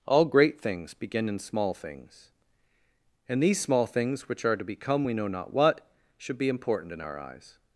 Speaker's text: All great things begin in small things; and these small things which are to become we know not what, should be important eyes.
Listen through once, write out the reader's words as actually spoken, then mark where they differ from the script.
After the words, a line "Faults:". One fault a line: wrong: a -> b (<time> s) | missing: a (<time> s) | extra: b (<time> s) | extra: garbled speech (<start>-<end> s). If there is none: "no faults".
All great things begin in small things; and these small things which are to become we know not what, should be important in our eyes.
Faults:
extra: in our (6.9 s)